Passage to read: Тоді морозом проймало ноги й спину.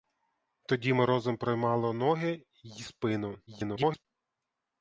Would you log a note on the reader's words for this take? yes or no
yes